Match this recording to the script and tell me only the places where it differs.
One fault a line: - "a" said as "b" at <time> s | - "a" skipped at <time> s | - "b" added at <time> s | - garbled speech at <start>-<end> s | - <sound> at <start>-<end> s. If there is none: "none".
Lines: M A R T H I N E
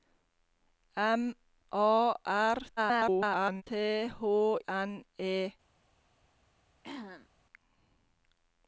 - garbled speech at 2.8-3.6 s
- "I" skipped at 4.6 s
- throat clearing at 6.8-7.3 s